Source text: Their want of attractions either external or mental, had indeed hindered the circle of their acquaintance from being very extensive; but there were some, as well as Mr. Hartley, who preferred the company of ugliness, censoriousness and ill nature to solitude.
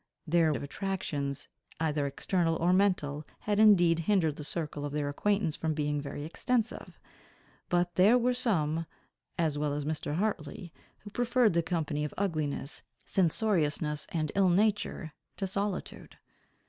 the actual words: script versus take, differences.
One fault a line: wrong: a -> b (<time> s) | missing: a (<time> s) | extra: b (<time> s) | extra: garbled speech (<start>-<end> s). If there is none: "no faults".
missing: want (0.5 s)